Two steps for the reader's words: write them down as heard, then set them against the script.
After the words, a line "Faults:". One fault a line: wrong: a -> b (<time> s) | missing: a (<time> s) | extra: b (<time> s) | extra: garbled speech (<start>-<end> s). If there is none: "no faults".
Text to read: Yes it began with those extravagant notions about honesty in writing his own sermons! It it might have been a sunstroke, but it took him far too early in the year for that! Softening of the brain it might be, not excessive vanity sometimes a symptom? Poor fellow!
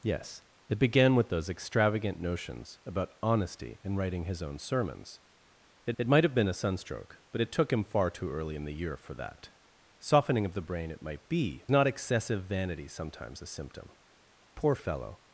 Yes it began with those extravagant notions about honesty in writing his own sermons! It it might have been a sunstroke, but it took him far too early in the year for that! Softening of the brain it might be, not excessive vanity sometimes a symptom? Poor fellow!
Faults:
no faults